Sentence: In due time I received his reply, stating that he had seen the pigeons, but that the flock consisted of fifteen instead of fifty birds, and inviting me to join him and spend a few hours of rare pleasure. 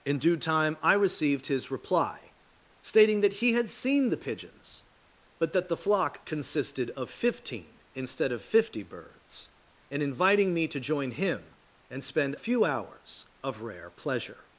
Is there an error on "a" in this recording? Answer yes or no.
yes